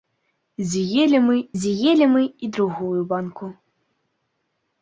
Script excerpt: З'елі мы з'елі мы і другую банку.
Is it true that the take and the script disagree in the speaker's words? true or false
false